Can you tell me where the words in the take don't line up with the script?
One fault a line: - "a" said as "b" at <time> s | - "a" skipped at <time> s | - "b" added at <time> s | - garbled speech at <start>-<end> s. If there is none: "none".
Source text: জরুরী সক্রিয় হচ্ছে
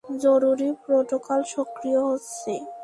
- "প্রোটোকল" added at 0.8 s